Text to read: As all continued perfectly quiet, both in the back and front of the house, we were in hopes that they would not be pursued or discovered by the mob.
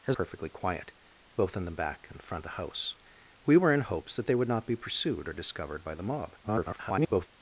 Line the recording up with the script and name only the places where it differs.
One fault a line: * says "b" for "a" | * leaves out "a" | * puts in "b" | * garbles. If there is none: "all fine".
* leaves out "all continued"
* leaves out "of"
* garbles